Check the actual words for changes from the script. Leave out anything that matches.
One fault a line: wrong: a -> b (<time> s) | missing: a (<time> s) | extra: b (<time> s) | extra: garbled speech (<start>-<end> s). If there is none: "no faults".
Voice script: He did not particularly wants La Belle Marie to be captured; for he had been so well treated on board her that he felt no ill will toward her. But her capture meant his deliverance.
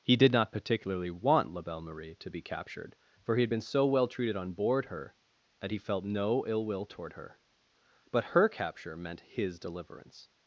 wrong: wants -> want (1.1 s)